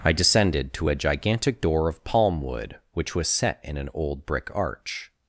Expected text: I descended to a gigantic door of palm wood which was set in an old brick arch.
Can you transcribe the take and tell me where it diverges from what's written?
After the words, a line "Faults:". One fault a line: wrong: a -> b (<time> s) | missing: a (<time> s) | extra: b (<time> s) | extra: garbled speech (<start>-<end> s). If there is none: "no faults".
I descended to a gigantic door of palm wood which was set in an old brick arch.
Faults:
no faults